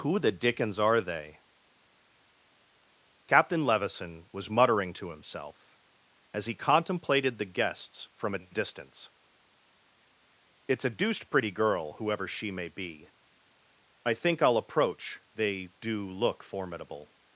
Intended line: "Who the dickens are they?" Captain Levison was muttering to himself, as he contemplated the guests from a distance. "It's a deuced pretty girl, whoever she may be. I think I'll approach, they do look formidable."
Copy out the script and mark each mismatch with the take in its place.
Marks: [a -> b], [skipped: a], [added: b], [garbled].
"Who the dickens are they?" Captain Levison was muttering to himself, as he contemplated the guests from a distance. "It's a deuced pretty girl, whoever she may be. I think I'll approach, they do look formidable."